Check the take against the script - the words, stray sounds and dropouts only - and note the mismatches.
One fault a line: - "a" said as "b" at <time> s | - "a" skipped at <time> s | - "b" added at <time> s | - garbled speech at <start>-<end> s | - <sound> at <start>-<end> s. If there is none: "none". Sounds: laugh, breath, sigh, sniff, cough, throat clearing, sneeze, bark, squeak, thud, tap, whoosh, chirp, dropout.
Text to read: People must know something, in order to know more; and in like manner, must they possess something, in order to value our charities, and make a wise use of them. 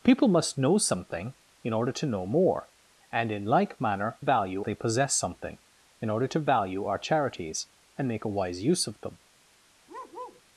- "must" said as "value" at 4.2 s
- bark at 9.9-10.4 s